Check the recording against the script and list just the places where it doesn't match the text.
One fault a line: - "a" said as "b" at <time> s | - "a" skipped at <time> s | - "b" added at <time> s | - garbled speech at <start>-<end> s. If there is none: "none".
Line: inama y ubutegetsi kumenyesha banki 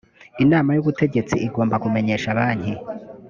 - "igomba" added at 1.5 s